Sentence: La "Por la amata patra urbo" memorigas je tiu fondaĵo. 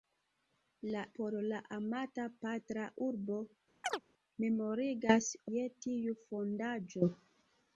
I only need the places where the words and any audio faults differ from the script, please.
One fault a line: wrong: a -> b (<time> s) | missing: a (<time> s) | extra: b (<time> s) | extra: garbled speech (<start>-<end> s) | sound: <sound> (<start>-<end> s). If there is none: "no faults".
sound: chirp (3.8-4.0 s)